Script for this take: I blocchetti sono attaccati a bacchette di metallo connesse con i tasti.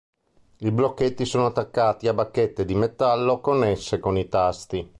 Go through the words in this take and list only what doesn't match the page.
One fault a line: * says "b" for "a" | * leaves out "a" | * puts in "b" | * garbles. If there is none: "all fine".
all fine